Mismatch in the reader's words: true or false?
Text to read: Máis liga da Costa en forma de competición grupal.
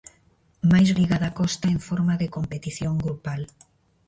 false